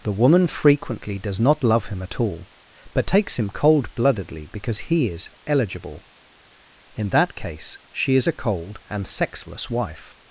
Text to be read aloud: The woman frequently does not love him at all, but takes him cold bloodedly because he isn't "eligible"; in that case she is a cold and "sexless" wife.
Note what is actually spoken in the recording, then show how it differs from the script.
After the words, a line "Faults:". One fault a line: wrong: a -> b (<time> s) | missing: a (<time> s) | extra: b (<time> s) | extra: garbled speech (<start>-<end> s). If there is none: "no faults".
The woman frequently does not love him at all, but takes him cold bloodedly because he is "eligible"; in that case she is a cold and "sexless" wife.
Faults:
wrong: isn't -> is (5.1 s)